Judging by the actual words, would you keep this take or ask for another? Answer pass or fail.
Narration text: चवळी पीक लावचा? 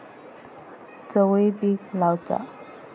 pass